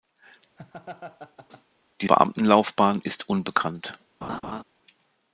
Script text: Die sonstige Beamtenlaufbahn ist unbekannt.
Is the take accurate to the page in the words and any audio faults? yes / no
no